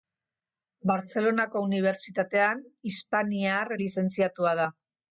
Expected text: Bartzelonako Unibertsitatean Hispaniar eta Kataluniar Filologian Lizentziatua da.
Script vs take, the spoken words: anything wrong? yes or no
yes